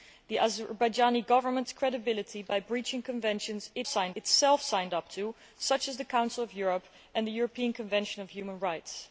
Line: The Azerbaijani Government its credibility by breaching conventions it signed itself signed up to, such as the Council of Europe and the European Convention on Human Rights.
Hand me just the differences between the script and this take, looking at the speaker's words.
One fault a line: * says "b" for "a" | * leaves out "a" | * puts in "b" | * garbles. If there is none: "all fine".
all fine